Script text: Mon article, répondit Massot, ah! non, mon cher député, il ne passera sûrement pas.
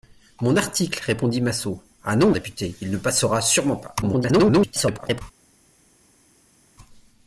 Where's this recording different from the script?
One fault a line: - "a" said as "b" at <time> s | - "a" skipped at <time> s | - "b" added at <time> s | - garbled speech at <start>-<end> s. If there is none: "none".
- "mon cher" skipped at 2.3 s
- garbled speech at 4.0-5.2 s